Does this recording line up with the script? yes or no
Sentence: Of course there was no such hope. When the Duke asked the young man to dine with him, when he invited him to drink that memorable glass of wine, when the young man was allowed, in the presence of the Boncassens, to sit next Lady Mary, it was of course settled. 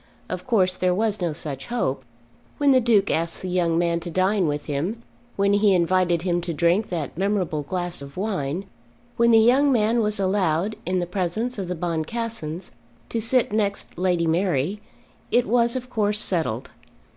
yes